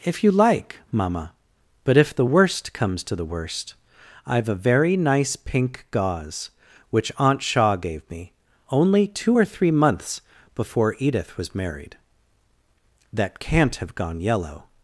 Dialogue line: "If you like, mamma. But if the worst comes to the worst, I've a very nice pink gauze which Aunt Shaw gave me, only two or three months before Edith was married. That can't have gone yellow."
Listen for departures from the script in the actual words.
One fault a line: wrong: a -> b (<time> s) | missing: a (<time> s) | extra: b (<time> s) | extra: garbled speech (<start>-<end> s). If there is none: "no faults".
no faults